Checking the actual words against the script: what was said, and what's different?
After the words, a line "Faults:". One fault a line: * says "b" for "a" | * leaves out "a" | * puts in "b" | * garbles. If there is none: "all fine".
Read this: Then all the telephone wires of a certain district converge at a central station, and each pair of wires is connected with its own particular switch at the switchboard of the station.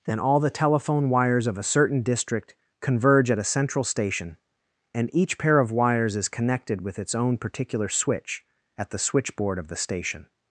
Then all the telephone wires of a certain district converge at a central station, and each pair of wires is connected with its own particular switch at the switchboard of the station.
Faults:
all fine